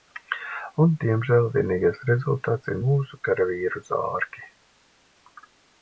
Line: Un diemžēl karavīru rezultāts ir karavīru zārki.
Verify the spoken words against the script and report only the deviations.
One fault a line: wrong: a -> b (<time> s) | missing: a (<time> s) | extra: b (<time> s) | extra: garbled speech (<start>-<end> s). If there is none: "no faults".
wrong: karavīru -> vienīgais (1.6 s)
extra: mūsu (2.8 s)